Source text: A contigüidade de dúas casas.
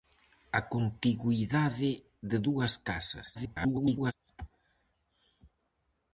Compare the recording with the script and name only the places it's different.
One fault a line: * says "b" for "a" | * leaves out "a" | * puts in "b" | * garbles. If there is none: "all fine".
* garbles